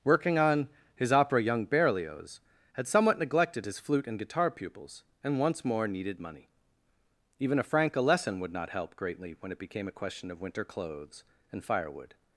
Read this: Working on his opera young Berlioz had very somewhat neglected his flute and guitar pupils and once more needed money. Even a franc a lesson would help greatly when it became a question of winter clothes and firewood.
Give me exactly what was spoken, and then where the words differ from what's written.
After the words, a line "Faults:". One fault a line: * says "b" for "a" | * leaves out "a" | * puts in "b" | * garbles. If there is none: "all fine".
Working on his opera young Berlioz had somewhat neglected his flute and guitar pupils and once more needed money. Even a franc a lesson would not help greatly when it became a question of winter clothes and firewood.
Faults:
* leaves out "very"
* puts in "not"